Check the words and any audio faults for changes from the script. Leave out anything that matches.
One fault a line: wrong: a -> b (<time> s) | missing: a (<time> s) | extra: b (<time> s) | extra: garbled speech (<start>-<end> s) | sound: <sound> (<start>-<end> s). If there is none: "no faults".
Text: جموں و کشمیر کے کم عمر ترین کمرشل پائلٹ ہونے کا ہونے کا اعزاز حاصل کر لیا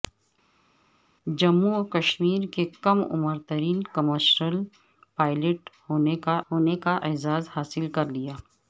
no faults